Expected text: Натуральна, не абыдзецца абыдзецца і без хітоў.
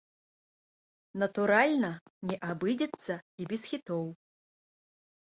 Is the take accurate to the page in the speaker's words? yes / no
no